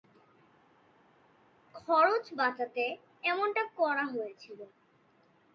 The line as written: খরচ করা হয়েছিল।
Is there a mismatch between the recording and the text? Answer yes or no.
yes